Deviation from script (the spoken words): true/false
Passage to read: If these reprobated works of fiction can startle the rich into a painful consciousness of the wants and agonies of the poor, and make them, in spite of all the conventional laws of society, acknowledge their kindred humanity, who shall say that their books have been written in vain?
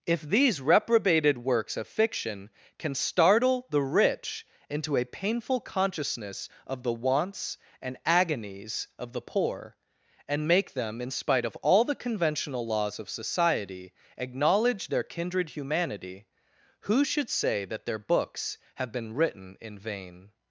true